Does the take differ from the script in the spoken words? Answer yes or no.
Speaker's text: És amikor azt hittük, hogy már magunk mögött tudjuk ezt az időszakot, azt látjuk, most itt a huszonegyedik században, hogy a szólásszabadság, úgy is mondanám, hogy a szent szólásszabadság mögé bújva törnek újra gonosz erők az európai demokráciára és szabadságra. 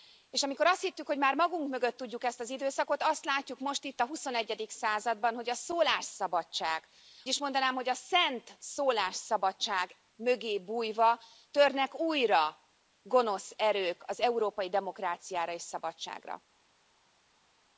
yes